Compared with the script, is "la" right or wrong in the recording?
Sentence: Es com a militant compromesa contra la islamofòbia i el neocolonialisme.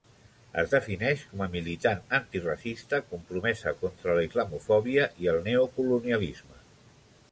right